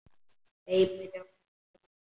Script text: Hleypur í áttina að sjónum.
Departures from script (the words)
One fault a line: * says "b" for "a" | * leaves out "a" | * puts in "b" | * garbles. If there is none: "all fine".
all fine